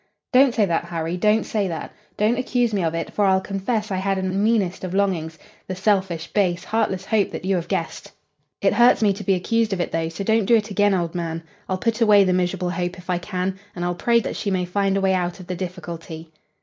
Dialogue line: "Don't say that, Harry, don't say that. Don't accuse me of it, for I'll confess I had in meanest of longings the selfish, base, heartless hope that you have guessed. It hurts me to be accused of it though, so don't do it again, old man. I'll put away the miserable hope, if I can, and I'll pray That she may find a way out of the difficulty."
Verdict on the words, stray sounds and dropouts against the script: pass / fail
pass